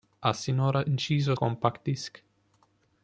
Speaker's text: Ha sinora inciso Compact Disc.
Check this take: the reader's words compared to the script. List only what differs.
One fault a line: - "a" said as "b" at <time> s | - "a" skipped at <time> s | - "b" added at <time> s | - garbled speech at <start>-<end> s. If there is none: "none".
none